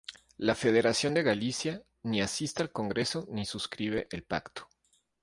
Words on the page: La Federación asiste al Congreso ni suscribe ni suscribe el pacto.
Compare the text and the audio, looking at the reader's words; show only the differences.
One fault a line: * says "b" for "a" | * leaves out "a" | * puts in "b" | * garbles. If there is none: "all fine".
* puts in "de Galicia ni"
* leaves out "ni suscribe"